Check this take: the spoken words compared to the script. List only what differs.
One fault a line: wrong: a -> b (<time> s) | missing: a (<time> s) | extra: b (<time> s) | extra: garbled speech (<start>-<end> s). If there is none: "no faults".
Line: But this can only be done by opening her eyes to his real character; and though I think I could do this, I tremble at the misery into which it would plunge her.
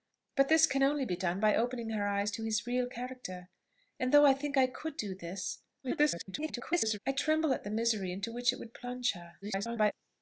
extra: garbled speech (5.8-7.0 s)
extra: garbled speech (9.4-9.9 s)